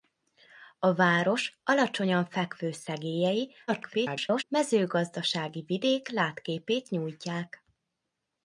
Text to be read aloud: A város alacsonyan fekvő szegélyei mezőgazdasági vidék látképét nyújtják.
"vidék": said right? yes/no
yes